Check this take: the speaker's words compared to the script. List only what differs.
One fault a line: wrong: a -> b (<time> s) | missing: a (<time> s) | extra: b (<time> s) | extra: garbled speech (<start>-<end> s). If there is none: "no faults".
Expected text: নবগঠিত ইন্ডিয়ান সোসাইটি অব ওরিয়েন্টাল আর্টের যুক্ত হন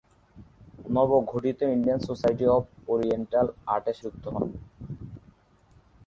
no faults